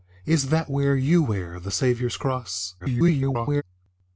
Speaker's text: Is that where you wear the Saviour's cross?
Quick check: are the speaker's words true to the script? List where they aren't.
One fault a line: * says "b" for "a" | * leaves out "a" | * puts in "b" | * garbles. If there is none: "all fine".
* garbles